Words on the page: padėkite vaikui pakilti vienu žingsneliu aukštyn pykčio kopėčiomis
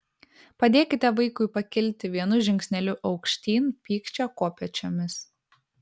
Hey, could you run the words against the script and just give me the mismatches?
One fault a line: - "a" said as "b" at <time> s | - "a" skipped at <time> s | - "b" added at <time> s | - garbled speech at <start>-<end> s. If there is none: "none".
none